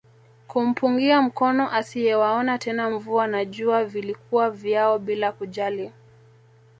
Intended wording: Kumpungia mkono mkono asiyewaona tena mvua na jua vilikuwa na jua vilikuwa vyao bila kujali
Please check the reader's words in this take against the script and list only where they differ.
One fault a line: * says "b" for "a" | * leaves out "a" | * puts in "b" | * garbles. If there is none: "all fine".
* leaves out "mkono"
* leaves out "na jua vilikuwa"